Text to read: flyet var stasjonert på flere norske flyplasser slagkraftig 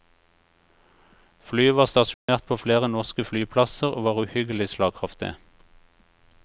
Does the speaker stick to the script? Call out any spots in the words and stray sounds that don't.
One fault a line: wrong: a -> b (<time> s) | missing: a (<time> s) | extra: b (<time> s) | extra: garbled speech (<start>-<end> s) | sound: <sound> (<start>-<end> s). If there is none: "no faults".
sound: dropout (2.1-2.3 s)
extra: og var uhyggelig (3.9 s)